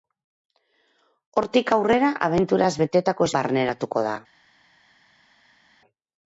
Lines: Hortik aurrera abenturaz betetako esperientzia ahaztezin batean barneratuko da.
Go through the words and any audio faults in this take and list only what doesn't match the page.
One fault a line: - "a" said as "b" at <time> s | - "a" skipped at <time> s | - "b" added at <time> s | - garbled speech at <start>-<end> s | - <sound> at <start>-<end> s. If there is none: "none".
- "esperientzia ahaztezin batean" skipped at 3.3 s